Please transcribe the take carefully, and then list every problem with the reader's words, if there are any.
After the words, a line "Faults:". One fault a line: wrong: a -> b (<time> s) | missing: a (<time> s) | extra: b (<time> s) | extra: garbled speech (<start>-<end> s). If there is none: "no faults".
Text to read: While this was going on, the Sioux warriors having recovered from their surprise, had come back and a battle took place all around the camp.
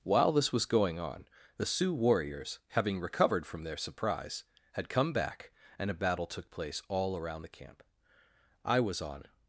While this was going on, the Sioux warriors having recovered from their surprise, had come back and a battle took place all around the camp. I was on
Faults:
extra: I was on (8.6 s)